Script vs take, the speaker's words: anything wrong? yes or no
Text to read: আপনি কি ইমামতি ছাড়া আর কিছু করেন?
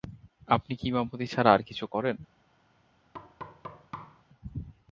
no